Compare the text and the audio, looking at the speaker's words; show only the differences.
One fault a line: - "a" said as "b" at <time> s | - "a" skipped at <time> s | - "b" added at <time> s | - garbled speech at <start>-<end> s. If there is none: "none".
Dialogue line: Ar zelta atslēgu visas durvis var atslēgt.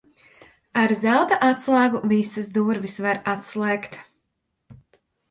none